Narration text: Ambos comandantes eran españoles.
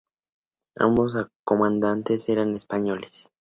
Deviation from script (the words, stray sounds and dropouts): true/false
false